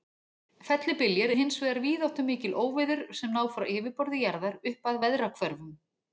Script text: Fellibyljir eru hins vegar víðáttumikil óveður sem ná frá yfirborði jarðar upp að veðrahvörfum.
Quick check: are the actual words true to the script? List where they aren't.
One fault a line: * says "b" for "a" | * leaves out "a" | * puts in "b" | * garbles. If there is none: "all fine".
* leaves out "eru"